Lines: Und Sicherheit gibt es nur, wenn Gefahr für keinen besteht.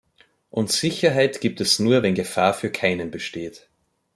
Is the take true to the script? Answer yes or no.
yes